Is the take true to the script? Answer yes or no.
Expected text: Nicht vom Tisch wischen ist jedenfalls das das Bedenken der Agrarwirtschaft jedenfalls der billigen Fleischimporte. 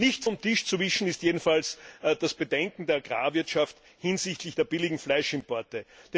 no